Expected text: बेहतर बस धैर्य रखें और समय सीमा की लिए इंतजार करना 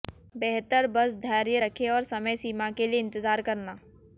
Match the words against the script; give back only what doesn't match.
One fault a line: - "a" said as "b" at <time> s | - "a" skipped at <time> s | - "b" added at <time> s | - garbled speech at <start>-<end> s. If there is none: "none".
- "की" said as "के" at 2.7 s